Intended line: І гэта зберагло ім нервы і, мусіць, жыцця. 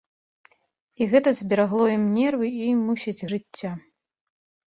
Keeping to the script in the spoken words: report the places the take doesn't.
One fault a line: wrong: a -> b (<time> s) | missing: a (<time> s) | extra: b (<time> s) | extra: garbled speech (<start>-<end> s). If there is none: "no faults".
no faults